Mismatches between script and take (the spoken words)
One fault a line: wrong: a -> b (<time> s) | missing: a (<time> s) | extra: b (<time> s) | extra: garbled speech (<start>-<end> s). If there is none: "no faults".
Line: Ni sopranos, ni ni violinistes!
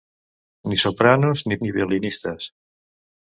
no faults